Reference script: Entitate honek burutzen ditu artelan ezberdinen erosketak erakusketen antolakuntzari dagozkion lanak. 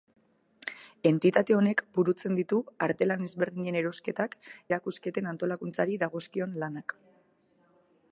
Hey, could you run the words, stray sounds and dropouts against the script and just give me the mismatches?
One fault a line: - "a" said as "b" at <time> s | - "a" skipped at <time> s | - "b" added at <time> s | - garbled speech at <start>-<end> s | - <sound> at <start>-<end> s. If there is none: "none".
none